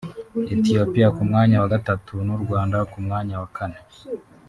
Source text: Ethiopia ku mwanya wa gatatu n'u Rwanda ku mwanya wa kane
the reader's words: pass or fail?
pass